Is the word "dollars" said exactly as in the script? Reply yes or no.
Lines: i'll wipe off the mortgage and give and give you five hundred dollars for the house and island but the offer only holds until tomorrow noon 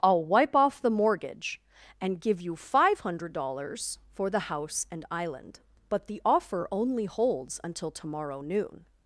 yes